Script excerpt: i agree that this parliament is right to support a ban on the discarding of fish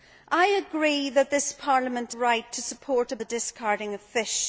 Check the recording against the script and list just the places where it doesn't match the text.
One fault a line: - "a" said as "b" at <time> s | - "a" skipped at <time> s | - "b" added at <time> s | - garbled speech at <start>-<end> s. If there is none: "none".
- "is" skipped at 2.1 s
- "ban on" skipped at 3.2 s